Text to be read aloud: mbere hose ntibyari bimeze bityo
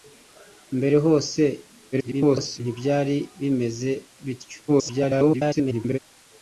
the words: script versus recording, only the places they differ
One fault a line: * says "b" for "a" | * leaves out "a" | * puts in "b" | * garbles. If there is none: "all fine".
* garbles
* garbles